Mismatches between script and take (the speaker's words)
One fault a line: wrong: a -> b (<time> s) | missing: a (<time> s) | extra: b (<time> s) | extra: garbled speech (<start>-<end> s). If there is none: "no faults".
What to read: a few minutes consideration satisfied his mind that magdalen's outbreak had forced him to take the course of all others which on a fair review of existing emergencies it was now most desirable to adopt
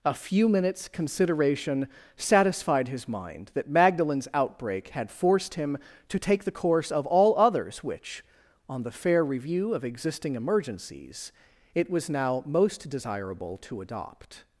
wrong: a -> the (8.8 s)